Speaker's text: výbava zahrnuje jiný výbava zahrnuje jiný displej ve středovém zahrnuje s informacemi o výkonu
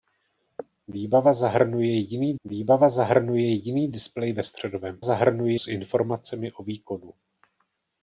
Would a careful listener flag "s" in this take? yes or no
no